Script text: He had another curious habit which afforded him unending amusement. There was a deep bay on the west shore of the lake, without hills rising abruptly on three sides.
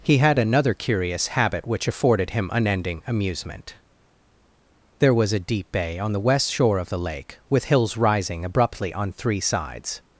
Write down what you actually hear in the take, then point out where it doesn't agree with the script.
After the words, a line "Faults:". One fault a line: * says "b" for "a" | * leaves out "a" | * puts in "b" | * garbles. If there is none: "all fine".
He had another curious habit which afforded him unending amusement. There was a deep bay on the west shore of the lake, with hills rising abruptly on three sides.
Faults:
* says "with" for "without"